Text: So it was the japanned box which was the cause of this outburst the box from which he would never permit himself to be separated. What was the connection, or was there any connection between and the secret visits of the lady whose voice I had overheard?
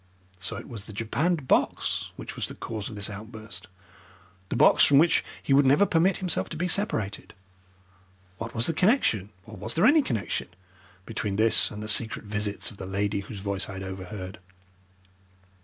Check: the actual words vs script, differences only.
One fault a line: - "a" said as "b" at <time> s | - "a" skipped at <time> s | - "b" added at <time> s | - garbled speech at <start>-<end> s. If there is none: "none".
- "this" added at 11.4 s